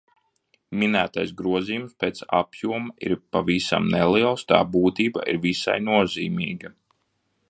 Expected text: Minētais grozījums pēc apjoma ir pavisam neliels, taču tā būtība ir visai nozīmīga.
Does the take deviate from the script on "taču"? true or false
true